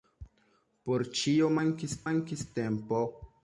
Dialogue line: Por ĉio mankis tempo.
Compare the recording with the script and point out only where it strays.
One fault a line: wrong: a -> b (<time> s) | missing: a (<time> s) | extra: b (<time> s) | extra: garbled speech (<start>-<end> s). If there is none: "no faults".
extra: mankis (2.1 s)